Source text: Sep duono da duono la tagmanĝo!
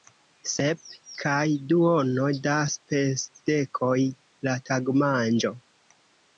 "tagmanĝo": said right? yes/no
yes